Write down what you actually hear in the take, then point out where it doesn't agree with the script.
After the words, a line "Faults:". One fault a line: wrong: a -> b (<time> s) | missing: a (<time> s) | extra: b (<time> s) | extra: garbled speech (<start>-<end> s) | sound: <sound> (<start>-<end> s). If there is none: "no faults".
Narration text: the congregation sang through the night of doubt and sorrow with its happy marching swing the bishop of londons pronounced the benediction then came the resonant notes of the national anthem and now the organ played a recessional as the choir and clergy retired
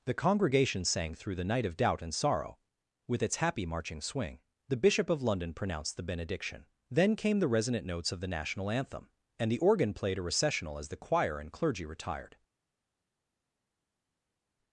the congregation sang through the night of doubt and sorrow with its happy marching swing the bishop of london pronounced the benediction then came the resonant notes of the national anthem and the organ played a recessional as the choir and clergy retired
Faults:
wrong: londons -> london (5.2 s)
missing: now (9.5 s)